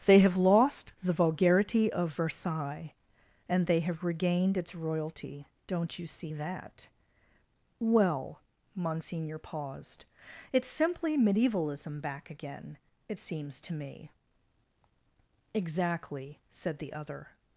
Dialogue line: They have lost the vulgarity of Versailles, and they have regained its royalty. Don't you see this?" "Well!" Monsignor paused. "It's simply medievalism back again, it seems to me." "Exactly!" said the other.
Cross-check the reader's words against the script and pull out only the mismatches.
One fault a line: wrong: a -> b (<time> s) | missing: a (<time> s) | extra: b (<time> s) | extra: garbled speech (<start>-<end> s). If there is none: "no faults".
wrong: this -> that (6.3 s)